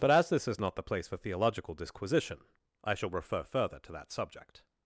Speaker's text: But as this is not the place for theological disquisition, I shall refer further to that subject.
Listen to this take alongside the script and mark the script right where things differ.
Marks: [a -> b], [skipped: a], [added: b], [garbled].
But as this is not the place for theological disquisition, I shall refer further to that subject.